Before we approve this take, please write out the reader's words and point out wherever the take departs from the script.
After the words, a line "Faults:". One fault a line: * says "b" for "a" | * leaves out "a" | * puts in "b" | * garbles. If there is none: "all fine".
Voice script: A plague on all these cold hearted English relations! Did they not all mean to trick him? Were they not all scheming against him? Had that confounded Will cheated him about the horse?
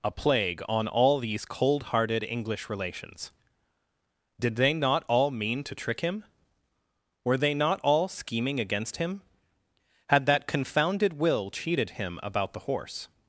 A plague on all these cold hearted English relations! Did they not all mean to trick him? Were they not all scheming against him? Had that confounded Will cheated him about the horse?
Faults:
all fine